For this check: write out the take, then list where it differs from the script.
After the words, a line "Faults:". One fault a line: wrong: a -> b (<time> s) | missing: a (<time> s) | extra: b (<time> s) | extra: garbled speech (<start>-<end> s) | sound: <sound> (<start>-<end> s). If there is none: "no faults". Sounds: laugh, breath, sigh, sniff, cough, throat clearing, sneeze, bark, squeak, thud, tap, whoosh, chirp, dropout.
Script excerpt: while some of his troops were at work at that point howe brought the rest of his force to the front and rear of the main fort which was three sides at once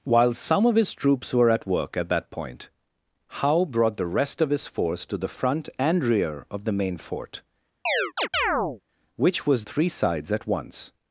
while some of his troops were at work at that point howe brought the rest of his force to the front and rear of the main fort which was three sides at once
Faults:
sound: chirp (7.9-8.8 s)